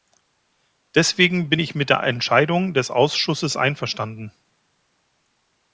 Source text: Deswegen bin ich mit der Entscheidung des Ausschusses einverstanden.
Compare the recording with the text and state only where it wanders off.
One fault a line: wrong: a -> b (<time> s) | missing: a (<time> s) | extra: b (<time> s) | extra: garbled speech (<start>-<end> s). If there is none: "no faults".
no faults